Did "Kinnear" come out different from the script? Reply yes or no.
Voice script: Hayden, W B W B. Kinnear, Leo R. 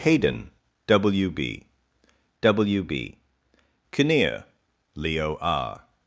no